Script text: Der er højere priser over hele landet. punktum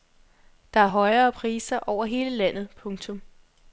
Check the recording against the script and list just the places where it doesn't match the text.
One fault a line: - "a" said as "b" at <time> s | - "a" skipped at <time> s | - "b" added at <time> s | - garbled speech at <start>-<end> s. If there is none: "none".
none